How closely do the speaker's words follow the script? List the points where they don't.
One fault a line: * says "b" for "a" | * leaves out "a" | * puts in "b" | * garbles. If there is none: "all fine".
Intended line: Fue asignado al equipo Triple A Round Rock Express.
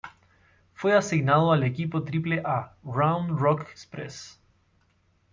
all fine